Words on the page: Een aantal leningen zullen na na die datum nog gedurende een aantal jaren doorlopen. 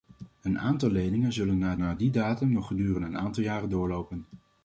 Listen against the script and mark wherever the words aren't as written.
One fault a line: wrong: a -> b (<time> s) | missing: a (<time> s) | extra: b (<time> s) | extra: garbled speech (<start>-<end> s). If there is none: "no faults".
no faults